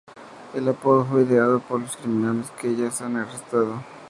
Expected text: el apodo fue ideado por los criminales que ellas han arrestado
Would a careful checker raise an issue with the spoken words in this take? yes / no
no